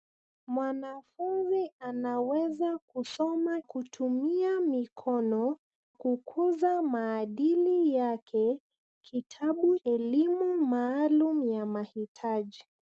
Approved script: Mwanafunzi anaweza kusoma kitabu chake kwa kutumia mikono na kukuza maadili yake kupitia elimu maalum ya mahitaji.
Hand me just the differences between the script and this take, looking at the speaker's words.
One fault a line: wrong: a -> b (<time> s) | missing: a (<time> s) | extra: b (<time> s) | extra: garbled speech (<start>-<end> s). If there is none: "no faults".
missing: kitabu chake kwa (3.6 s)
missing: na (5.6 s)
wrong: kupitia -> kitabu (9.0 s)